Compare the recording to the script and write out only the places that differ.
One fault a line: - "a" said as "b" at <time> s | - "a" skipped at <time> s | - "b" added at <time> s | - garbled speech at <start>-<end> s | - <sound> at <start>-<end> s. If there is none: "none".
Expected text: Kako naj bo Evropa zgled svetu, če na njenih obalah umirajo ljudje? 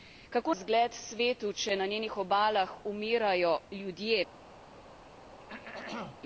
- "naj bo Evropa" skipped at 0.5 s
- throat clearing at 5.4-6.2 s